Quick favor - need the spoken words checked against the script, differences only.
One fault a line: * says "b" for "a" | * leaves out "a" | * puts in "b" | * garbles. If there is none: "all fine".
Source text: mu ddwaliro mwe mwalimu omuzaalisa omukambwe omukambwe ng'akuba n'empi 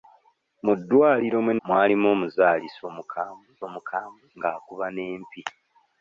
all fine